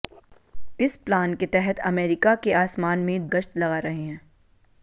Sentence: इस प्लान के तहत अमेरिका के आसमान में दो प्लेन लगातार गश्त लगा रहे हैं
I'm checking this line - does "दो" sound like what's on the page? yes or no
no